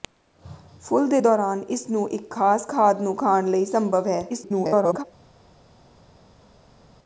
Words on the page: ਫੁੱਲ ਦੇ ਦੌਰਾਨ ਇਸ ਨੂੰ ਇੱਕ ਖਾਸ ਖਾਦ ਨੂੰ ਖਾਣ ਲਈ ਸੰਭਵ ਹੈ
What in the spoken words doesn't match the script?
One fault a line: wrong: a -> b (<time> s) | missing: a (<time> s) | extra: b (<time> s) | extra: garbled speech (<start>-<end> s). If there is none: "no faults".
extra: garbled speech (4.3-5.0 s)